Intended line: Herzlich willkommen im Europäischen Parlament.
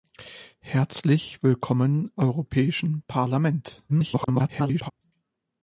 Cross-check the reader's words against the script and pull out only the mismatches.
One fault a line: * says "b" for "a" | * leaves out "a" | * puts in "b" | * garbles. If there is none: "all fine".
* leaves out "im"
* garbles